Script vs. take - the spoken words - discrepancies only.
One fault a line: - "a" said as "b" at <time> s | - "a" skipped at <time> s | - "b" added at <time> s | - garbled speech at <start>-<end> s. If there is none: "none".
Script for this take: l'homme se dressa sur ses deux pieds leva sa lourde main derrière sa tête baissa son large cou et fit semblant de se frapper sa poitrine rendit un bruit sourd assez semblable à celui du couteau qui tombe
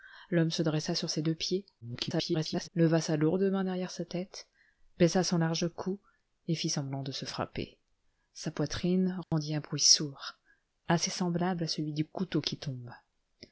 - garbled speech at 1.8-2.7 s